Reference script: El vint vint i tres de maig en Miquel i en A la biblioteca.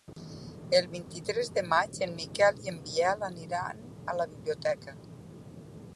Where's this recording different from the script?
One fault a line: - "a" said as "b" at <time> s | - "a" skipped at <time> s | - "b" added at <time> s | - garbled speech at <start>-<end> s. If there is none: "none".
- "vint" skipped at 1.1 s
- "Biel aniran" added at 2.9 s